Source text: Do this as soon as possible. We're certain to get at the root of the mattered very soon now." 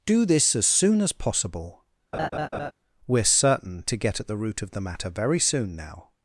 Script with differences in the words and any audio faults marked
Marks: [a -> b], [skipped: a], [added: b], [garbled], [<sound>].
Do this as soon as possible. [laugh] We're certain to get at the root of the [mattered -> matter] very soon now."